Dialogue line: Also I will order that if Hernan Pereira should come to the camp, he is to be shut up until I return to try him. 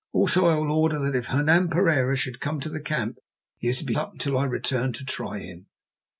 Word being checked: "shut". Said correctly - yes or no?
no